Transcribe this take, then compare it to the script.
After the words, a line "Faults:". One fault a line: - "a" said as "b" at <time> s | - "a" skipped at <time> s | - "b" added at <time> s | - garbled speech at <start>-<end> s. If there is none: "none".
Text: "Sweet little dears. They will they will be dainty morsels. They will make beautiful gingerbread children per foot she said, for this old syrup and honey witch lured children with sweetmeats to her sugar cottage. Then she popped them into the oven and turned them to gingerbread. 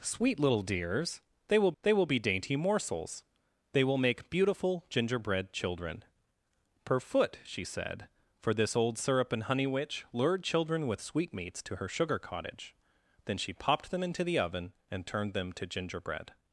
"Sweet little dears. They will they will be dainty morsels. They will make beautiful gingerbread children per foot she said, for this old syrup and honey witch lured children with sweetmeats to her sugar cottage. Then she popped them into the oven and turned them to gingerbread.
Faults:
none